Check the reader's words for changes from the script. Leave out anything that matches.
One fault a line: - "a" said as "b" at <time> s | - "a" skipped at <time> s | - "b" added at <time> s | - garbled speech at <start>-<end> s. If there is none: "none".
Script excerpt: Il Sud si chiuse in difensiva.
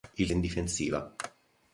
- "Sud si chiuse" skipped at 0.3 s